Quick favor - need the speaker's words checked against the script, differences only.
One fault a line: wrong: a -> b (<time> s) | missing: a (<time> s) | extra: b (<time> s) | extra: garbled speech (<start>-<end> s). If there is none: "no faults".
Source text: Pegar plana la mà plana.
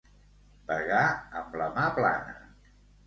wrong: plana -> amb (1.4 s)